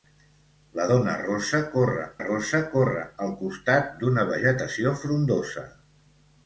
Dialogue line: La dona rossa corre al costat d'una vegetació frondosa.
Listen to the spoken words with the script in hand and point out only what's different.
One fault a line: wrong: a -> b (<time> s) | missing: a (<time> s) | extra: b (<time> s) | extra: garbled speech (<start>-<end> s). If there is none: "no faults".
extra: rossa corre (2.2 s)